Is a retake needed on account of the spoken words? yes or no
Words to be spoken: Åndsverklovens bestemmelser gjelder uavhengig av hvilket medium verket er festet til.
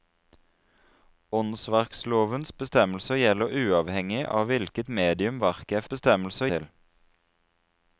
yes